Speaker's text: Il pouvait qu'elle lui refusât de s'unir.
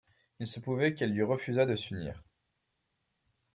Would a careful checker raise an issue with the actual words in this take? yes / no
yes